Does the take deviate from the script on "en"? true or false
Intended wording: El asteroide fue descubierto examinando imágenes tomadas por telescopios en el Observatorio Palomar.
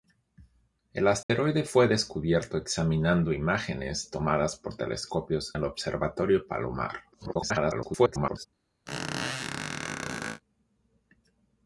true